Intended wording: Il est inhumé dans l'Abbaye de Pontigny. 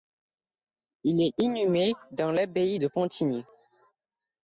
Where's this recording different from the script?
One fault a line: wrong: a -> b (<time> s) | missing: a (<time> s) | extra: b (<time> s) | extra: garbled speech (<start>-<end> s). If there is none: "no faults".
no faults